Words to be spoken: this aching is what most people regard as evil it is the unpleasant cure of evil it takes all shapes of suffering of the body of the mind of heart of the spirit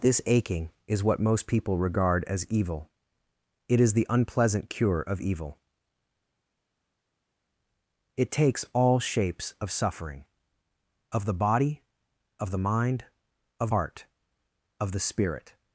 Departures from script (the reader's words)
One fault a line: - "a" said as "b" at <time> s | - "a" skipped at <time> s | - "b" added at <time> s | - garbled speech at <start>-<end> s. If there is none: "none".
none